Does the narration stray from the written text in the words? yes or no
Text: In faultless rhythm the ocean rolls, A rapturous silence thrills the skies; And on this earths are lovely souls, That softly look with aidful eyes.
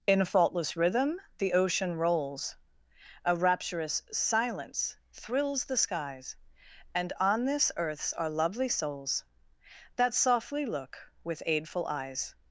no